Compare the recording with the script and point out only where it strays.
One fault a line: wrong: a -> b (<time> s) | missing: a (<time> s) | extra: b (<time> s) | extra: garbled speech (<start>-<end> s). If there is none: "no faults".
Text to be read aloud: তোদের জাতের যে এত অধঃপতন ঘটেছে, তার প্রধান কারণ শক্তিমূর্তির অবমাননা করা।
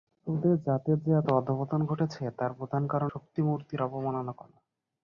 no faults